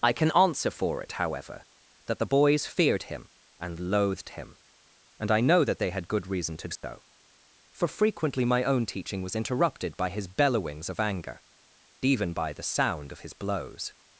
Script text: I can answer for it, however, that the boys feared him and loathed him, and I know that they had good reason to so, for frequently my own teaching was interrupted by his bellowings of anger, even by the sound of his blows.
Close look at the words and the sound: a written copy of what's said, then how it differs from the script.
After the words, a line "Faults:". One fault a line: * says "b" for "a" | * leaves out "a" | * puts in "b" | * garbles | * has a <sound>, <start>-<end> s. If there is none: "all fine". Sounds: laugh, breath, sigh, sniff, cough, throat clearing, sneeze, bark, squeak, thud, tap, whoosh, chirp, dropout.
I can answer for it, however, that the boys feared him and loathed him, and I know that they had good reason to so, for frequently my own teaching was interrupted by his bellowings of anger, even by the sound of his blows.
Faults:
* has a dropout, 6.8-6.8 s